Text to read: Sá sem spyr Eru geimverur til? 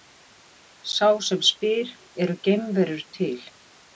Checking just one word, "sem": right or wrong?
right